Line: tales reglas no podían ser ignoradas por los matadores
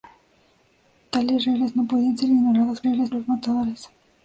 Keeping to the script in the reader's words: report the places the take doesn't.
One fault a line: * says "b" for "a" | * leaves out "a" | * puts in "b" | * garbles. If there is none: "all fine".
* says "reglas" for "por"